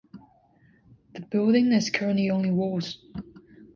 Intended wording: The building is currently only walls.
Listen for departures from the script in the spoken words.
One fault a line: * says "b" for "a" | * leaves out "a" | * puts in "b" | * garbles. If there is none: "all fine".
all fine